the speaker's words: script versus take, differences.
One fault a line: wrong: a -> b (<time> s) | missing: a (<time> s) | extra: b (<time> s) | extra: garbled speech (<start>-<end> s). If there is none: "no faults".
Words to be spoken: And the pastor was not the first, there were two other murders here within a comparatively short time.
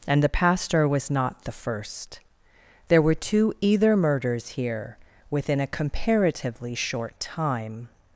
wrong: other -> either (3.6 s)